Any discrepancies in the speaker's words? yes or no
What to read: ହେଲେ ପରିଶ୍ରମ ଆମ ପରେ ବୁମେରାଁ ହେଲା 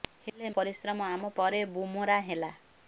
no